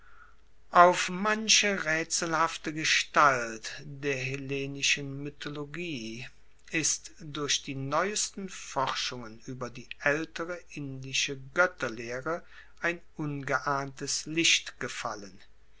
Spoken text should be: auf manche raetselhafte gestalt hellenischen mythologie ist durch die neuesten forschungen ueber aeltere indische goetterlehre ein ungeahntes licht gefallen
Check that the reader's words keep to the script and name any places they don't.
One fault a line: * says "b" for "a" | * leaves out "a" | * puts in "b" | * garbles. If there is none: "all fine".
* puts in "der"
* puts in "die"